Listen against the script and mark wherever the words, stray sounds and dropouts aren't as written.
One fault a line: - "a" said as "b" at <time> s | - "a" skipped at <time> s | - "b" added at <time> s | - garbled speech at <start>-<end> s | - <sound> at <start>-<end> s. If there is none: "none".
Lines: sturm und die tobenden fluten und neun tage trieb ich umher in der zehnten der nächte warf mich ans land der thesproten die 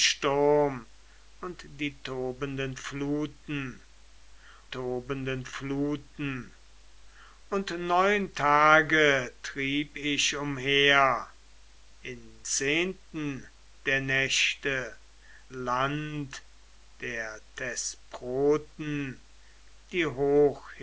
- "tobenden fluten" added at 4.7 s
- "der" skipped at 12.4 s
- "warf mich ans" skipped at 15.0 s